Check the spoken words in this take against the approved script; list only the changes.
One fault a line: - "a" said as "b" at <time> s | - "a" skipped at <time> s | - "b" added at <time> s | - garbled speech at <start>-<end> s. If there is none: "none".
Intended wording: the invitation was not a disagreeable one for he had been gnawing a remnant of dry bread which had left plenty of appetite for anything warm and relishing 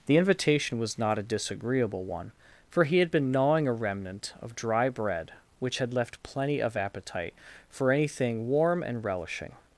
none